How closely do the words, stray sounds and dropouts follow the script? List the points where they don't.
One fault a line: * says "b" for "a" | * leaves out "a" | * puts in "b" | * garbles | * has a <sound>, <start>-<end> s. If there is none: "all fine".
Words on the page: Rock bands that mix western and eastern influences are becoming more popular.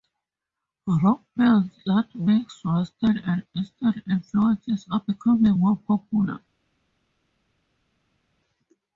all fine